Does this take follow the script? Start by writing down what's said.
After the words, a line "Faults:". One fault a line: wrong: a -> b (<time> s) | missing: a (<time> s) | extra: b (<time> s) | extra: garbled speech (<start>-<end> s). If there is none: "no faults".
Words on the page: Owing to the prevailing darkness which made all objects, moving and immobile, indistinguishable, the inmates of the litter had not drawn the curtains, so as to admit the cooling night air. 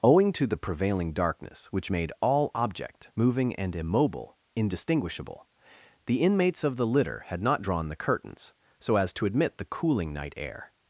Owing to the prevailing darkness which made all object, moving and immobile, indistinguishable, the inmates of the litter had not drawn the curtains, so as to admit the cooling night air.
Faults:
wrong: objects -> object (2.5 s)